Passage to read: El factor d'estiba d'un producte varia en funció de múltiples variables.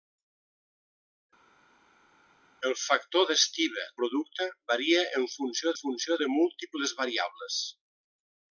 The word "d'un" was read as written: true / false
false